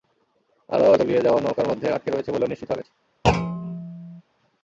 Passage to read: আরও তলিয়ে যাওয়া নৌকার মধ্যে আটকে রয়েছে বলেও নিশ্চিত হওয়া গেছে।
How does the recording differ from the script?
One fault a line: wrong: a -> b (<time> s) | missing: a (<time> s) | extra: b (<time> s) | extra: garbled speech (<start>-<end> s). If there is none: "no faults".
no faults